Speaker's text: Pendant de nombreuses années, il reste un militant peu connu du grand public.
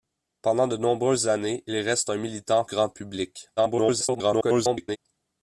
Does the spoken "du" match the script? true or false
false